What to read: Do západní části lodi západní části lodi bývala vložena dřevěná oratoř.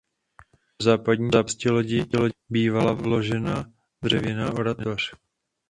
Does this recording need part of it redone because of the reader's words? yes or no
yes